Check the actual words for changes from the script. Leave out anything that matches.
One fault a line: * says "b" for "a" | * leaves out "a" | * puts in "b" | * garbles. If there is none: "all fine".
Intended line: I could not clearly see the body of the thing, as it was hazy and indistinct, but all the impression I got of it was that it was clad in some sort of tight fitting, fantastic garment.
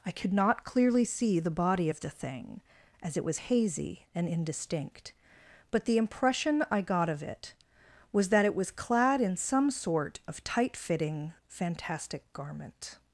* leaves out "all"